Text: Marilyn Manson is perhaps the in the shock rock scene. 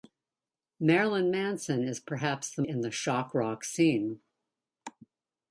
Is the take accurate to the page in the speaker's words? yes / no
yes